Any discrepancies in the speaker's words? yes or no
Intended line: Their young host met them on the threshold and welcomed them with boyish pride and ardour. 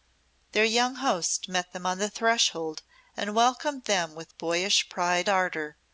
yes